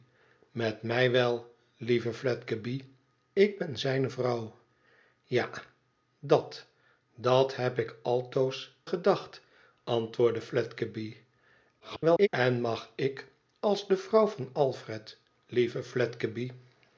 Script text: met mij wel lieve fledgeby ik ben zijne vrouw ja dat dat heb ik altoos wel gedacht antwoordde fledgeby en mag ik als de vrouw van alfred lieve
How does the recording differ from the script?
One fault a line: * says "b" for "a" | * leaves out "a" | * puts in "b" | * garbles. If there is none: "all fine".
* leaves out "wel"
* garbles